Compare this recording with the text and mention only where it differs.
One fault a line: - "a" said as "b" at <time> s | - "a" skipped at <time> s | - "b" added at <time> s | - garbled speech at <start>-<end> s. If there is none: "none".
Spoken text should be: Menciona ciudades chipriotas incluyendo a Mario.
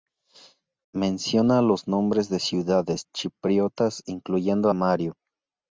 - "los nombres de" added at 1.6 s